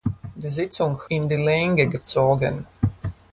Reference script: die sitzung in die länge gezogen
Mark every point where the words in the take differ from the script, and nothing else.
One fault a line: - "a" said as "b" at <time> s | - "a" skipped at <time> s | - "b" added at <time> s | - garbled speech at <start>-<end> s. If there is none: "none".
none